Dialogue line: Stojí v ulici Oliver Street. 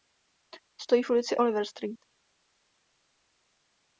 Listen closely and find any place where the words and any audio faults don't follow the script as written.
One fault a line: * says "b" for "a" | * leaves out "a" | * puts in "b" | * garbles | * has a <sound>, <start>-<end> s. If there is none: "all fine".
all fine